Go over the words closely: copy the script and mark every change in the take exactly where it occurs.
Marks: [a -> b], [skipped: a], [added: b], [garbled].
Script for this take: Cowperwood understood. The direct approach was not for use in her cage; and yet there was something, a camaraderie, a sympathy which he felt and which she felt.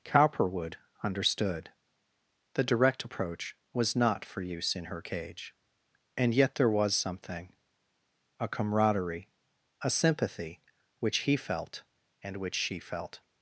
Cowperwood understood. The direct approach was not for use in her cage; and yet there was something, a camaraderie, a sympathy which he felt and which she felt.